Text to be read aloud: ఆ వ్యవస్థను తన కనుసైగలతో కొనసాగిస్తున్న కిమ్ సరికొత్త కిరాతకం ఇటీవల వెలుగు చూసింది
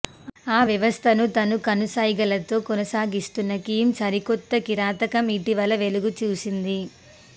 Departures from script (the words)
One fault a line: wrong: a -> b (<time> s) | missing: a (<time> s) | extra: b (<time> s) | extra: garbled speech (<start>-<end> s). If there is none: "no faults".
no faults